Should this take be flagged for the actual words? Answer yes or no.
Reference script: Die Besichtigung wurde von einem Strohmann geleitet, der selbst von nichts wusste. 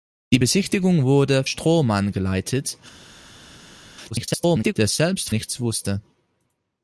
yes